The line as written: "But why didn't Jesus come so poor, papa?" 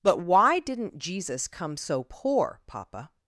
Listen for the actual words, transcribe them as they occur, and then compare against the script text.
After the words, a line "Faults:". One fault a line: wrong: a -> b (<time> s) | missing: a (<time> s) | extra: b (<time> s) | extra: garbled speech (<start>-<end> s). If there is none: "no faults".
"But why didn't Jesus come so poor, papa?"
Faults:
no faults